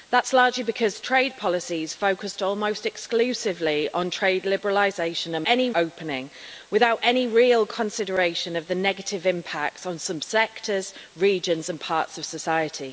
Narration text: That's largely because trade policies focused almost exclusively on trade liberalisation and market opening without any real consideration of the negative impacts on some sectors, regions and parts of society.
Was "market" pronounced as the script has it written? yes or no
no